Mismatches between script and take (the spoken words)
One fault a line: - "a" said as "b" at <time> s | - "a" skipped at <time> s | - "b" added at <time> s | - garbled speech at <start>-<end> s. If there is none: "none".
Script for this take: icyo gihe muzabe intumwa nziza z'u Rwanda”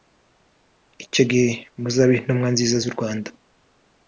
none